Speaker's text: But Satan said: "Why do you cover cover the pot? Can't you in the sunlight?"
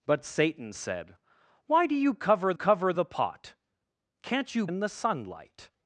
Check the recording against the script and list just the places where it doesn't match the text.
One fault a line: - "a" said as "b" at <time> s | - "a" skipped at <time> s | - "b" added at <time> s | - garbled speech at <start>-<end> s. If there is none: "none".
none